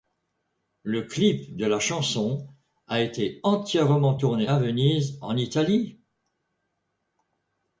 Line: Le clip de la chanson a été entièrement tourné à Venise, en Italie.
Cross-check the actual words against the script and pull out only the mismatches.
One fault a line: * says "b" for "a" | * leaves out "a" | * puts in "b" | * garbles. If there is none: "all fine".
all fine